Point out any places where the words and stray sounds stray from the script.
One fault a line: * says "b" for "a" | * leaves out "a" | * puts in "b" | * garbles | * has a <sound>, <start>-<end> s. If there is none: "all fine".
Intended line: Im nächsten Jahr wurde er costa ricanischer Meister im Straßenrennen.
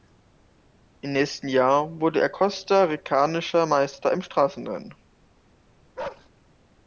* has a bark, 6.0-6.3 s